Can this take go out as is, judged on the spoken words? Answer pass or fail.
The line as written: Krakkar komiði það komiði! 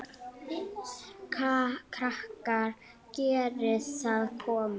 fail